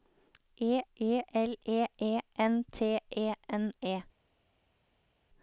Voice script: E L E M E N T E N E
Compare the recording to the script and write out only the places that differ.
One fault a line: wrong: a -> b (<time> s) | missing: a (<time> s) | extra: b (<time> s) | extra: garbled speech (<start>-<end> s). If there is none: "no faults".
extra: e (0.9 s)
missing: M (1.8 s)